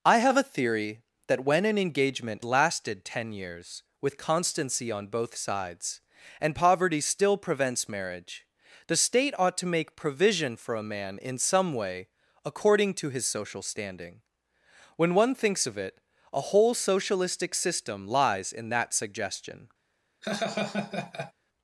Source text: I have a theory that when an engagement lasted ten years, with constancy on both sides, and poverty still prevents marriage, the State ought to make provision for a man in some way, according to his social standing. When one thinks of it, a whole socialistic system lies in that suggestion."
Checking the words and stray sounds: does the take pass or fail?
fail